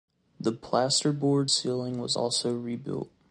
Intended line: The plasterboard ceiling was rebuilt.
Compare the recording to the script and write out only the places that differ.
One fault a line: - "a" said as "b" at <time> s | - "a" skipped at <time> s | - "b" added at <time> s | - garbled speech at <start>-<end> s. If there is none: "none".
- "also" added at 2.2 s